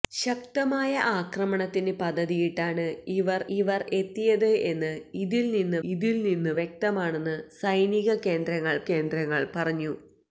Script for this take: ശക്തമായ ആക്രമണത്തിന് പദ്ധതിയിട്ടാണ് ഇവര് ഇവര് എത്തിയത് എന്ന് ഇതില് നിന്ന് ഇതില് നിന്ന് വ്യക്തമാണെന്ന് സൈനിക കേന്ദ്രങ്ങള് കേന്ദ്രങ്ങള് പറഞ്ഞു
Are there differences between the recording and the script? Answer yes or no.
no